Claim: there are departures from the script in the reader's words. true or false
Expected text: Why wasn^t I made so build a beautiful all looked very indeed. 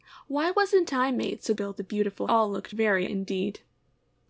false